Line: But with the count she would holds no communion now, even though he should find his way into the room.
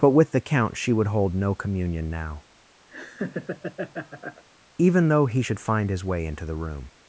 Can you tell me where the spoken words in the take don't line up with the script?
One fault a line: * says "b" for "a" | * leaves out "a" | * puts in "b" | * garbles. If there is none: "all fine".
* says "hold" for "holds"